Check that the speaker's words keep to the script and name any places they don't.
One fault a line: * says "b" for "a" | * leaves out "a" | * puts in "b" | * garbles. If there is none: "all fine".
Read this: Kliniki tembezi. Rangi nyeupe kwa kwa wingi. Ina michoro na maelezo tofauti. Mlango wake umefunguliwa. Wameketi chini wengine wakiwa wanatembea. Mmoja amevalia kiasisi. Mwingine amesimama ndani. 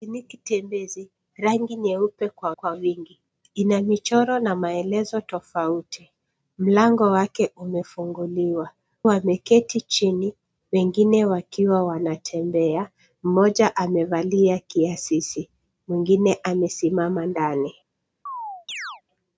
all fine